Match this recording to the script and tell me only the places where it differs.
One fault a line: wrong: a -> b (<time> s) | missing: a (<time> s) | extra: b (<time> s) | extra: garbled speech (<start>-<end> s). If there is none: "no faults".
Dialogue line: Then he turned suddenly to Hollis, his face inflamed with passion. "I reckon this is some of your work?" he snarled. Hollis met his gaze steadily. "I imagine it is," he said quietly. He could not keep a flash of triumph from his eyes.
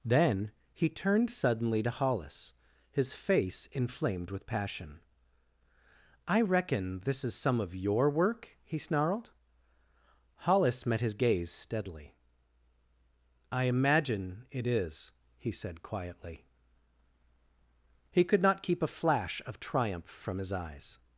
no faults